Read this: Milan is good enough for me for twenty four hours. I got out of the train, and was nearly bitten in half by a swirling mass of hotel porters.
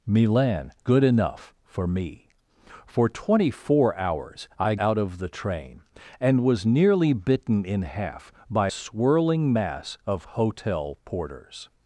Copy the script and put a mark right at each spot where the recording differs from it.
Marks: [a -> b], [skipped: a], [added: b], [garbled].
Milan [skipped: is] good enough for me for twenty four hours. I [skipped: got] out of the train, and was nearly bitten in half by [skipped: a] swirling mass of hotel porters.